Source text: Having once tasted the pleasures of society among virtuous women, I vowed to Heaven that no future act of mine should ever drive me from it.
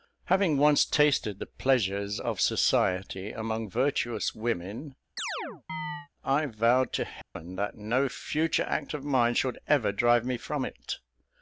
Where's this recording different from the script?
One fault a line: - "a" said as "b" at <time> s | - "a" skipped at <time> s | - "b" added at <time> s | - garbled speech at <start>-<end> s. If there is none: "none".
none